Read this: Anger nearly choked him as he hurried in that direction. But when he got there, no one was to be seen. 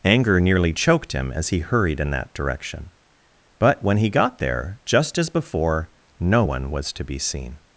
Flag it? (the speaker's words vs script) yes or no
yes